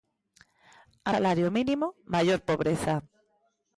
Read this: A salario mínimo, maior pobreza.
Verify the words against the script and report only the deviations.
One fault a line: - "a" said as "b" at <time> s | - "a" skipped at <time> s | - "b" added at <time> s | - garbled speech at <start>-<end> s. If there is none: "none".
none